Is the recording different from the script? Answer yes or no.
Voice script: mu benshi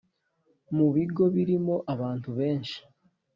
yes